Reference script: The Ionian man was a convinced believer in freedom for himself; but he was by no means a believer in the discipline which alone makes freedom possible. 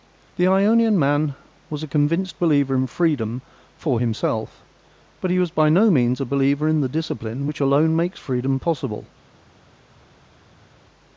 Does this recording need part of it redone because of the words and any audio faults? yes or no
no